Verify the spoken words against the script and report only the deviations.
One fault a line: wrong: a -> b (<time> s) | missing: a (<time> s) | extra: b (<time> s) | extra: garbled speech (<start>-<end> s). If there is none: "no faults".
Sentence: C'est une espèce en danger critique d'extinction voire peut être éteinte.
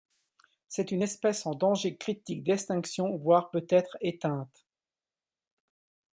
no faults